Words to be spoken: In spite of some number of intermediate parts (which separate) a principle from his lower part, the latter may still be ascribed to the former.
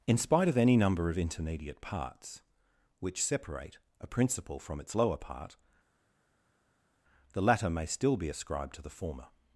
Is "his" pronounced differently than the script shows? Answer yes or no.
yes